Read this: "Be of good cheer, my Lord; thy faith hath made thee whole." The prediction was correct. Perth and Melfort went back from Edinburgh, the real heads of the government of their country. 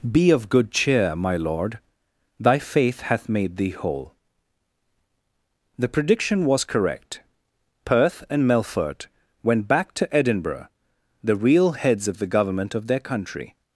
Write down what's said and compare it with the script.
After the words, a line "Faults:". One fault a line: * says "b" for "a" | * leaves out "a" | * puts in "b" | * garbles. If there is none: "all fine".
"Be of good cheer, my Lord; thy faith hath made thee whole." The prediction was correct. Perth and Melfort went back to Edinburgh, the real heads of the government of their country.
Faults:
* says "to" for "from"